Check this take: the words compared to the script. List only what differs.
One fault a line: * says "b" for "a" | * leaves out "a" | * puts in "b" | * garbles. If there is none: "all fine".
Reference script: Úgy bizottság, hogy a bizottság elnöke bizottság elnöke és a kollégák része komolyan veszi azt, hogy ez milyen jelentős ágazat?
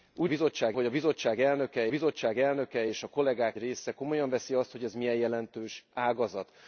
all fine